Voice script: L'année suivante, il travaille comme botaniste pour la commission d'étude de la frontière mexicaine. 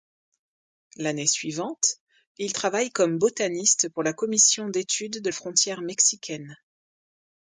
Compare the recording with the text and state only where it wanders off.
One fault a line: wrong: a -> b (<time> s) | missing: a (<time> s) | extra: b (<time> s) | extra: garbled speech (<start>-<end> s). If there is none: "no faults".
missing: la (5.3 s)